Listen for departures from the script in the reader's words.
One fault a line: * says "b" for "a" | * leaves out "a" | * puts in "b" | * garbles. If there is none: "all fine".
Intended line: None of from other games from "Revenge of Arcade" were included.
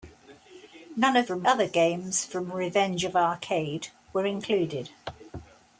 all fine